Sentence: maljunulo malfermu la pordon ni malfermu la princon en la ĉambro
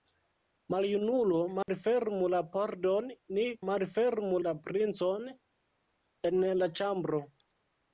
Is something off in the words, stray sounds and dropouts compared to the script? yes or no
yes